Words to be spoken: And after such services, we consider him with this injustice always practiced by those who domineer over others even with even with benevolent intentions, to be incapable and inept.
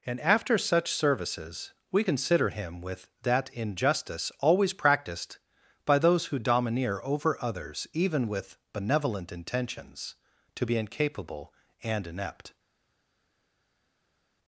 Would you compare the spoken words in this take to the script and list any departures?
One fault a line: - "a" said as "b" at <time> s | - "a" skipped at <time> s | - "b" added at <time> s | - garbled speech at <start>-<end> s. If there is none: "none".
- "this" said as "that" at 3.2 s
- "even with" skipped at 8.6 s